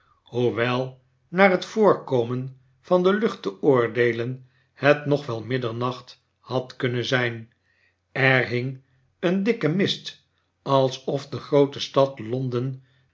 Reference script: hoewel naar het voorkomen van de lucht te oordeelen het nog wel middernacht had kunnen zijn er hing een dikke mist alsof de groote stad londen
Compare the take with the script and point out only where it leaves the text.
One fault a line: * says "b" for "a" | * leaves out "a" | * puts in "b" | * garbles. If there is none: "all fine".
all fine